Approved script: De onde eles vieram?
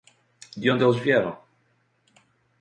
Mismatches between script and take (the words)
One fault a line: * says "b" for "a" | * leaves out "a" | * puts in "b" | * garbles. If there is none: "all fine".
all fine